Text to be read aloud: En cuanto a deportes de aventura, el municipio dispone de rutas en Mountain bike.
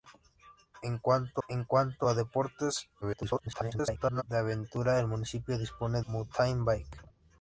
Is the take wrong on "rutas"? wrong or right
wrong